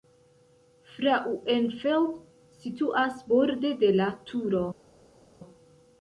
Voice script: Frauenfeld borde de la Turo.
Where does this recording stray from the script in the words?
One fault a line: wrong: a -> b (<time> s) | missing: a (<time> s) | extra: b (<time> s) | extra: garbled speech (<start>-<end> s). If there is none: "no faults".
extra: situas (2.6 s)